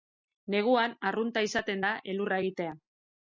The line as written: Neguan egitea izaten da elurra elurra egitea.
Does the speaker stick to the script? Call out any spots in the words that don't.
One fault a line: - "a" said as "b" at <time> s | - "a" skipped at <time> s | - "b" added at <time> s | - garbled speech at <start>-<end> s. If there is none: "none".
- "egitea" said as "arrunta" at 1.1 s
- "elurra" skipped at 2.4 s